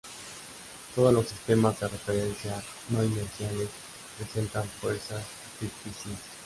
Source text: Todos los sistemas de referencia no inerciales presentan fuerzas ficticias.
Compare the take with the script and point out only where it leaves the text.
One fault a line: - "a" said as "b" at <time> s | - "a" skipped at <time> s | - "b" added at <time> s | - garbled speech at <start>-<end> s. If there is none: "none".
none